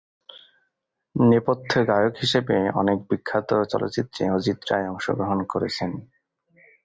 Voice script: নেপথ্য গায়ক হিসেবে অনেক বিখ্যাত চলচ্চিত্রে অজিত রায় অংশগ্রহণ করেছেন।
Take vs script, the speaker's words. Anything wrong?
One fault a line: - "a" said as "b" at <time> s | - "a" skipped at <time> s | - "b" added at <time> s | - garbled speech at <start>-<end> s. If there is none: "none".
none